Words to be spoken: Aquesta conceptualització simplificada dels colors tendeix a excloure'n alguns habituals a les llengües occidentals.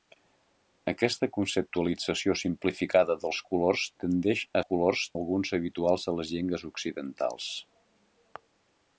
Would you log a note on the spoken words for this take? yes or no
yes